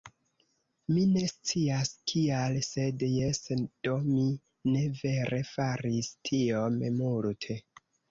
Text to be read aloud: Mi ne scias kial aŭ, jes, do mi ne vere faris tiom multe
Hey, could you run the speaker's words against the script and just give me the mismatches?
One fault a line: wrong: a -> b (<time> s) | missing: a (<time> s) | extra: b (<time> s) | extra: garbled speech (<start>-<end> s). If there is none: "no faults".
wrong: aŭ -> sed (2.7 s)